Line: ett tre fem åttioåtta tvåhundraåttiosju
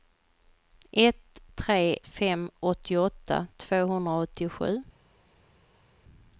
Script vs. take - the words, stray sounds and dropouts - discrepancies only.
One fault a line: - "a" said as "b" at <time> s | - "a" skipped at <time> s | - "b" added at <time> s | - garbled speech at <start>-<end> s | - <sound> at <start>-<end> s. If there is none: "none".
none